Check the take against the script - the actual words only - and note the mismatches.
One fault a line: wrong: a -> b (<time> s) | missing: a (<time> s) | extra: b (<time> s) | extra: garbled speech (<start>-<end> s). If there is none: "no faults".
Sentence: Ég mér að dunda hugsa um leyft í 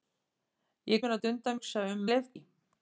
no faults